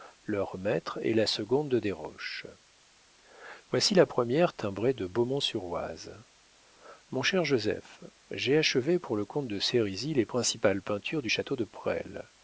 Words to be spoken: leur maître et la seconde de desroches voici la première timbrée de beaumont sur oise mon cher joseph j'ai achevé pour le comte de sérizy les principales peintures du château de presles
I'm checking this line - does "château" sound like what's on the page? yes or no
yes